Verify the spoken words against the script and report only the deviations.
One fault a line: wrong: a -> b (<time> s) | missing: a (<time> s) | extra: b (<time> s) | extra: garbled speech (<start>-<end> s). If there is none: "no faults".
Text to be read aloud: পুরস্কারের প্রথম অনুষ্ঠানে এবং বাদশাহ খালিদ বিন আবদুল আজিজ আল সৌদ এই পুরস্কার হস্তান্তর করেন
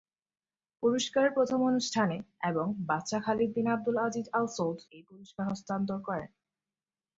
no faults